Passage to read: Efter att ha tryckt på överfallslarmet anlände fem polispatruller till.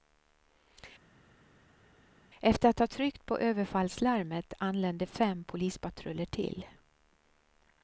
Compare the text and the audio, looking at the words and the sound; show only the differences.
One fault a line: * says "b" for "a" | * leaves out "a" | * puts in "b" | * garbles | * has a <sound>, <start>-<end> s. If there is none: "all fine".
all fine